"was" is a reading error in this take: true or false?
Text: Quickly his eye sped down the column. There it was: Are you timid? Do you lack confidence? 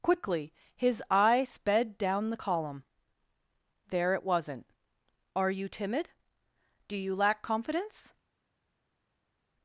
true